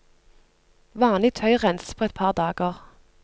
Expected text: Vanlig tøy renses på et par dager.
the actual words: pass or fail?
pass